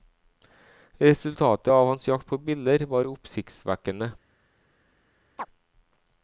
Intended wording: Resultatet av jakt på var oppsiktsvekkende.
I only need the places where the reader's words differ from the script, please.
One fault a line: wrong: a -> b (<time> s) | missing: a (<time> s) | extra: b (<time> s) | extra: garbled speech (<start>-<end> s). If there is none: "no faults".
extra: hans (1.9 s)
extra: biller (2.4 s)